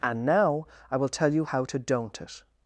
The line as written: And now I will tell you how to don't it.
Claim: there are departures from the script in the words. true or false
false